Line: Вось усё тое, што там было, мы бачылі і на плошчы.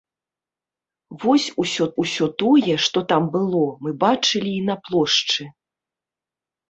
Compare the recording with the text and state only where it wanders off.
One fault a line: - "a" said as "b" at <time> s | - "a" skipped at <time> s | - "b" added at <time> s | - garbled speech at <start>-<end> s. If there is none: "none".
- "усё" added at 2.0 s